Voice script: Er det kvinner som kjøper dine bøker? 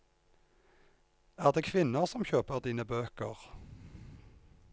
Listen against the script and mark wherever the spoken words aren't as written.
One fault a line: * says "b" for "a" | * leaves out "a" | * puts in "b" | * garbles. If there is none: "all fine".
all fine